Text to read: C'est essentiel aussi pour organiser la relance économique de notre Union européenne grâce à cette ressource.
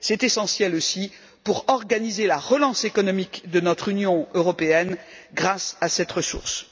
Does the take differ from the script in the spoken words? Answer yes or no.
no